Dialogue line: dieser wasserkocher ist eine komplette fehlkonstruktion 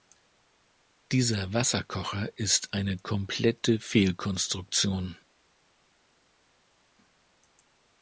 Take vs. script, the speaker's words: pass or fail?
pass